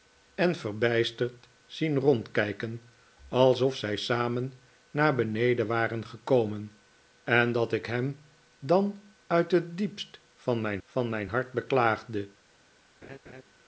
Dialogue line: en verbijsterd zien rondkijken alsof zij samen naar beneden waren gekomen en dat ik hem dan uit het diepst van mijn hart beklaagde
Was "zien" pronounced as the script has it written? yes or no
yes